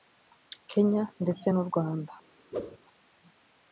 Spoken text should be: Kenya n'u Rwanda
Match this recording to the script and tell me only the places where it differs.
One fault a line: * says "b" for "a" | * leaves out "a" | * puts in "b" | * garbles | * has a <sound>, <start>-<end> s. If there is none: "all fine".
* puts in "ndetse"
* has a whoosh, 2.5-2.8 s